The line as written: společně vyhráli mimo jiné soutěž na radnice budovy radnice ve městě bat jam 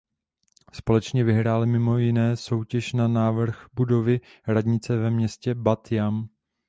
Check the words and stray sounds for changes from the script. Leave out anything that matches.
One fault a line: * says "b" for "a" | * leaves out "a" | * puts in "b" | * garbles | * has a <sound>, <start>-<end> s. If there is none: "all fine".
* says "návrh" for "radnice"